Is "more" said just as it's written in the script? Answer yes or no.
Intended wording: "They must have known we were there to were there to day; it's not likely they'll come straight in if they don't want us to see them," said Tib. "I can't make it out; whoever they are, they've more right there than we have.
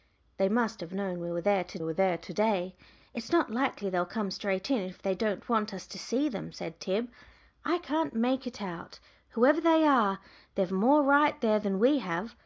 yes